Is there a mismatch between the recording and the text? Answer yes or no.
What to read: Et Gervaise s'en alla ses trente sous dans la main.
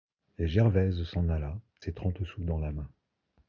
no